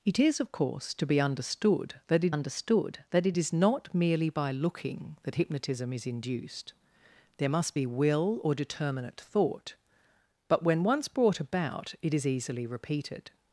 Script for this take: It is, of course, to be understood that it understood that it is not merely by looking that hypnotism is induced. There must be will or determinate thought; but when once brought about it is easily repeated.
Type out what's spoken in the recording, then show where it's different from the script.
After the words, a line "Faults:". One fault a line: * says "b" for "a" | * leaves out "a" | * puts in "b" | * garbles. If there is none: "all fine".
It is, of course, to be understood that it understood that it is not merely by looking that hypnotism is induced. There must be will or determinate thought; but when once brought about it is easily repeated.
Faults:
all fine